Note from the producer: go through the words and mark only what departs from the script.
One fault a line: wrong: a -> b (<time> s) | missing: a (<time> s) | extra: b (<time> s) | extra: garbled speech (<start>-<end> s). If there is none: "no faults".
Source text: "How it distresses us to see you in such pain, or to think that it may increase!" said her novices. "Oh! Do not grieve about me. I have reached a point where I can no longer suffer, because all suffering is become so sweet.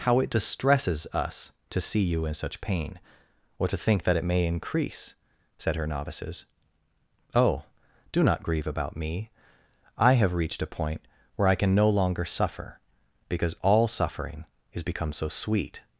no faults